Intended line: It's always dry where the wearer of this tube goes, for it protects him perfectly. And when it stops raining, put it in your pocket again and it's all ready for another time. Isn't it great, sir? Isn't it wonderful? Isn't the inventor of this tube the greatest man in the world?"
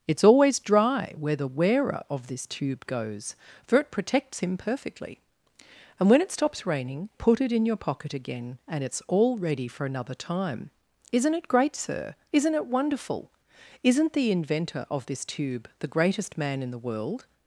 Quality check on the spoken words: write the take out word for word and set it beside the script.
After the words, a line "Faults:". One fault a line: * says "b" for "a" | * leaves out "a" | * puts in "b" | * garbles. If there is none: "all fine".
It's always dry where the wearer of this tube goes, for it protects him perfectly. And when it stops raining, put it in your pocket again and it's all ready for another time. Isn't it great, sir? Isn't it wonderful? Isn't the inventor of this tube the greatest man in the world?"
Faults:
all fine